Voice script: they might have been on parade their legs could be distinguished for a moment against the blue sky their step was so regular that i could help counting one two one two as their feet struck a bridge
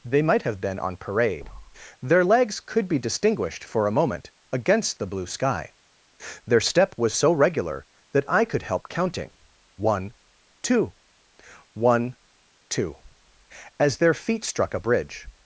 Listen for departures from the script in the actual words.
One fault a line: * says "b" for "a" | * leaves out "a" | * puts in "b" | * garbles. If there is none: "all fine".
all fine